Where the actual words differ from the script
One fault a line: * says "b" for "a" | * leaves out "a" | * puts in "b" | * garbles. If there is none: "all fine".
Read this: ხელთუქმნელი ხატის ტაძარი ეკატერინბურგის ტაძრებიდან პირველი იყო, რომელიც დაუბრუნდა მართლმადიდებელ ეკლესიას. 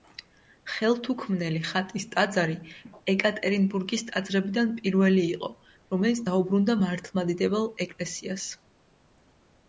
all fine